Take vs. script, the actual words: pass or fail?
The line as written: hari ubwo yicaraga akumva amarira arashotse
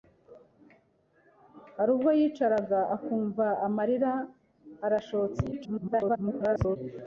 fail